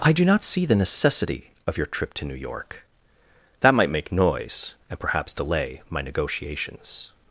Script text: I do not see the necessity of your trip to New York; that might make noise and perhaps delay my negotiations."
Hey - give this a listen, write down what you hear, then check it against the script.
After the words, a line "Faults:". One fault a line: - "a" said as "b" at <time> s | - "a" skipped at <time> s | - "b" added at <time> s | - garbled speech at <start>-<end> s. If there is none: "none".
I do not see the necessity of your trip to New York; that might make noise and perhaps delay my negotiations."
Faults:
none